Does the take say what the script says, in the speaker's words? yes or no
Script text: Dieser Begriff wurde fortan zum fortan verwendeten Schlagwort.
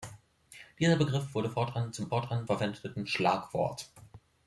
yes